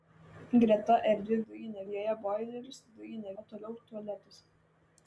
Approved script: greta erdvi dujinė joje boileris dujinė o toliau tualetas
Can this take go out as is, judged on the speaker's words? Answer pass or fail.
pass